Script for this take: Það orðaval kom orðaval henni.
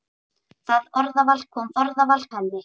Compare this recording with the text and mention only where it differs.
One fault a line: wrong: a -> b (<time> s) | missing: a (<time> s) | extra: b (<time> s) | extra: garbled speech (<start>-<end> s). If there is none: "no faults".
no faults